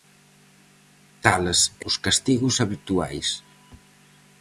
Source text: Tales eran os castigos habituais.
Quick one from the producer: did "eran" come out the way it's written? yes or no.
no